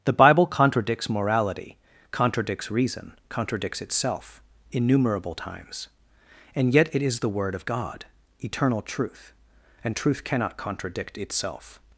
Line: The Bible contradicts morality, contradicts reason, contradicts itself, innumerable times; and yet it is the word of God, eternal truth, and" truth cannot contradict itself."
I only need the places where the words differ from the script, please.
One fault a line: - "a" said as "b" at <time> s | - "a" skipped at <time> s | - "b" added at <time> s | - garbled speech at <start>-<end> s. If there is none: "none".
none